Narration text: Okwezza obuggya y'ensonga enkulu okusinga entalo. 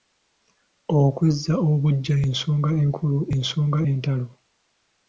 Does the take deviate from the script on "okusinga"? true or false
true